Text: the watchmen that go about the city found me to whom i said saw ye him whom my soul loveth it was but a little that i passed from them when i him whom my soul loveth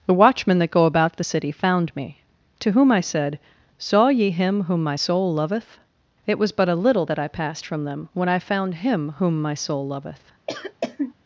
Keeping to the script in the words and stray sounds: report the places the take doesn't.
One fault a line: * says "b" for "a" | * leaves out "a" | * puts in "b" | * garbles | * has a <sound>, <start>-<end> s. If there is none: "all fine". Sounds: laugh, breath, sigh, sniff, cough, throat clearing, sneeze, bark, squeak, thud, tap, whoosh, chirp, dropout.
* puts in "found"
* has a cough, 10.5-11.1 s